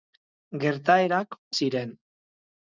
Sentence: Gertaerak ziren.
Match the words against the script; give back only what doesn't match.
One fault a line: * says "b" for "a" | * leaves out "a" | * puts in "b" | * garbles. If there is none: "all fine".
all fine